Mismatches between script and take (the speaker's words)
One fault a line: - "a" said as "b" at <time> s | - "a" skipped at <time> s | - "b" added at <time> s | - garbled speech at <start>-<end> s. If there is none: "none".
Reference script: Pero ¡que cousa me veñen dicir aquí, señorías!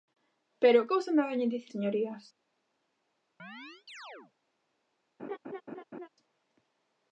- "que" skipped at 0.9 s
- "aquí" skipped at 1.7 s